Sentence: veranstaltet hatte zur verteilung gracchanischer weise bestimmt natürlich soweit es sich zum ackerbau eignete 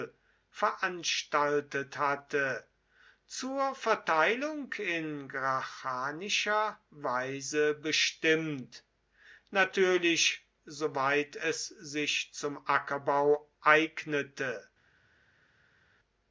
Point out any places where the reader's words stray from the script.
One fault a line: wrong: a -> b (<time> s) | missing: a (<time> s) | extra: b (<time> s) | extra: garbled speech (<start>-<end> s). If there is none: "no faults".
extra: in (4.7 s)